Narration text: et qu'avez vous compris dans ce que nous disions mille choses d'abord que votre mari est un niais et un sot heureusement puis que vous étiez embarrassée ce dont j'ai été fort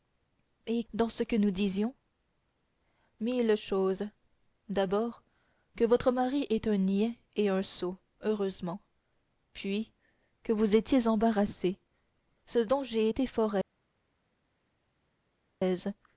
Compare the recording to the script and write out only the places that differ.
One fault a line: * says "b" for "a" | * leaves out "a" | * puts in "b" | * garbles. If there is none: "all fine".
* leaves out "qu'avez vous compris"